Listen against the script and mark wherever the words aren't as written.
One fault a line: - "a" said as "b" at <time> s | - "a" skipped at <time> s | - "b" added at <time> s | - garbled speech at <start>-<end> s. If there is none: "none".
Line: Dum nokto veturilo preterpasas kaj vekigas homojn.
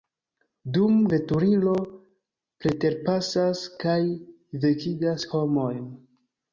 - "nokto" skipped at 0.9 s